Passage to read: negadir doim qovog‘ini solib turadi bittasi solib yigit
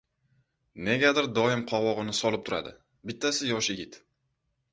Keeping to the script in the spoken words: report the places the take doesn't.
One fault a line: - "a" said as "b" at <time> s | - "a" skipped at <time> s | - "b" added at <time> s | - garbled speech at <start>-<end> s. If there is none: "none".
- "solib" said as "yosh" at 3.5 s